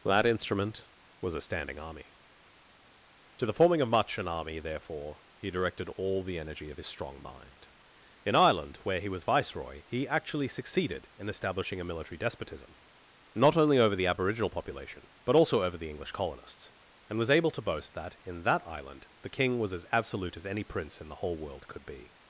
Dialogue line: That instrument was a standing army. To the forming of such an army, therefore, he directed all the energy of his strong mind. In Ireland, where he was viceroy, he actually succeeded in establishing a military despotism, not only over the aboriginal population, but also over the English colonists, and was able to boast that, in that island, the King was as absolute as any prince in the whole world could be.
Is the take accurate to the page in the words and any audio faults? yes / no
no